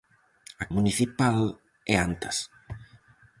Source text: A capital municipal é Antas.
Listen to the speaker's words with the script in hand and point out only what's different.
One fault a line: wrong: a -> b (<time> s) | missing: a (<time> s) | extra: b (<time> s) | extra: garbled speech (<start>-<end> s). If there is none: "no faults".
missing: capital (0.7 s)